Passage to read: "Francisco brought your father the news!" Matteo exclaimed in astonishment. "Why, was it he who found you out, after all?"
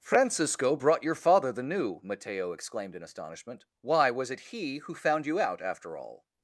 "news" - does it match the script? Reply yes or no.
no